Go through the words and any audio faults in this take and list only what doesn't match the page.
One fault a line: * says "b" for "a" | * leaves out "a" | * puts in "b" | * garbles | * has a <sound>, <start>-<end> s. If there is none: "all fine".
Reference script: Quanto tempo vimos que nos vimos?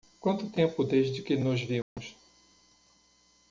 * says "desde" for "vimos"
* has a dropout, 1.8-2.0 s